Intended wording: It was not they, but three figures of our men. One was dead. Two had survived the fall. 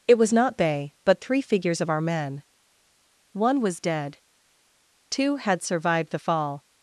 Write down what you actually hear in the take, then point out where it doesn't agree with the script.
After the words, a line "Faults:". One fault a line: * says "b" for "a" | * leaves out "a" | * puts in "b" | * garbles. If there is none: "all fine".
It was not they, but three figures of our men. One was dead. Two had survived the fall.
Faults:
all fine